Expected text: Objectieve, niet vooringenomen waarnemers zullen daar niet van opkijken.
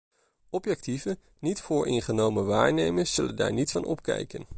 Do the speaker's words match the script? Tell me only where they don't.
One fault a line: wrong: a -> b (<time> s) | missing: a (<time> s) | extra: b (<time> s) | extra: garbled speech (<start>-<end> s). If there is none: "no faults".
no faults